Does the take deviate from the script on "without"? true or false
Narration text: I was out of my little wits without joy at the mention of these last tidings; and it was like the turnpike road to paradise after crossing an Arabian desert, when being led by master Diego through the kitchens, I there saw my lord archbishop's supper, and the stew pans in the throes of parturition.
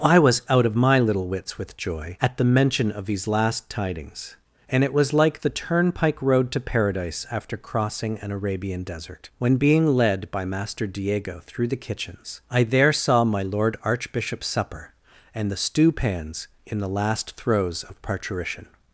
true